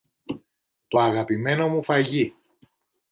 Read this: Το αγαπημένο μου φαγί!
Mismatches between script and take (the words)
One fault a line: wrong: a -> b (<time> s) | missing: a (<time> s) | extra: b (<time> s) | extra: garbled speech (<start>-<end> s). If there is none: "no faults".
no faults